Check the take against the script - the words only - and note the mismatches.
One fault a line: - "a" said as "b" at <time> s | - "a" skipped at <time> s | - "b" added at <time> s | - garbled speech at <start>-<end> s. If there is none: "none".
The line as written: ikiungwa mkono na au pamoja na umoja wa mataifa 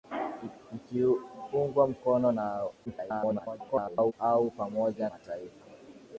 - garbled speech at 2.9-4.1 s
- "na umoja wa" skipped at 5.1 s